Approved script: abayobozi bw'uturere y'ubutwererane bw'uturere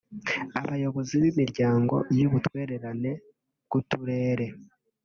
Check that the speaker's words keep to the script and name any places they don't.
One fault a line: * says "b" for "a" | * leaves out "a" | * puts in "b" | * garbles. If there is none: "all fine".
* says "b'imiryango" for "bw'uturere"